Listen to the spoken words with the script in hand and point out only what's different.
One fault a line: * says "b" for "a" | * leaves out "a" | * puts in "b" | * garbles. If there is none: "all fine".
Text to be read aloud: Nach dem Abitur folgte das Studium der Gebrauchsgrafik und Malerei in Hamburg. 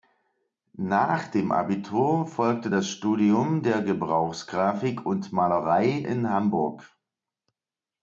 all fine